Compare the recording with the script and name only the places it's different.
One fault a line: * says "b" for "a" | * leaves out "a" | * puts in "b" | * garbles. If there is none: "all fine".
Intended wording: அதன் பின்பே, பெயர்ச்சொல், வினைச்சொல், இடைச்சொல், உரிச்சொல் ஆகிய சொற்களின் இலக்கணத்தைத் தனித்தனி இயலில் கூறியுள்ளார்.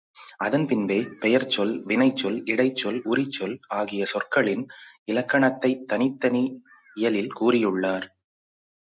all fine